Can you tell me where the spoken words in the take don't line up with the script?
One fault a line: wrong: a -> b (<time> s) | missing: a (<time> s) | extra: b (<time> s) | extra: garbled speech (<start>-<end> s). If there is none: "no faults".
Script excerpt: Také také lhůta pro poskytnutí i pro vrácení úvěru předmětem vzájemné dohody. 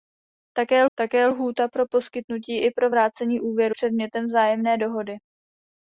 no faults